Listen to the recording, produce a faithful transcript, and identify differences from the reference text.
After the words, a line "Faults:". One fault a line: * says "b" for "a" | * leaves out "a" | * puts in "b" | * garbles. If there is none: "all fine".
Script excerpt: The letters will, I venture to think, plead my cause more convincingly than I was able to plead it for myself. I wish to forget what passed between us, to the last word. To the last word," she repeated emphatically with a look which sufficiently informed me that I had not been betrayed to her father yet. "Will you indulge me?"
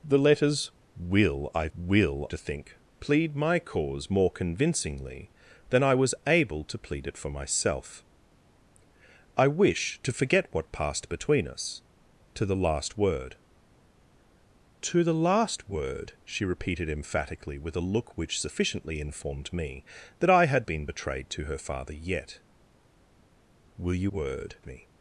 The letters will, I will to think, plead my cause more convincingly than I was able to plead it for myself. I wish to forget what passed between us, to the last word. To the last word," she repeated emphatically with a look which sufficiently informed me that I had been betrayed to her father yet. "Will you word me?"
Faults:
* says "will" for "venture"
* leaves out "not"
* says "word" for "indulge"